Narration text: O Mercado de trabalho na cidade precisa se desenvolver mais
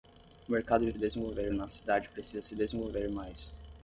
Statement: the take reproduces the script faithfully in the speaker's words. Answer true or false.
false